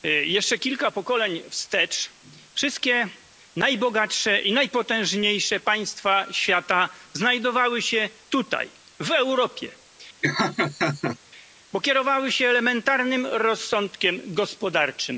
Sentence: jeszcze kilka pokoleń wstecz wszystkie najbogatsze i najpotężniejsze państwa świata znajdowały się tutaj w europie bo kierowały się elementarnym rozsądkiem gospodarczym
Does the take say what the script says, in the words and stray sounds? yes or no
no